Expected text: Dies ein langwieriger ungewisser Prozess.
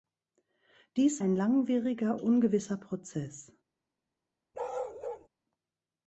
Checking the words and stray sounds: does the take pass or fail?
fail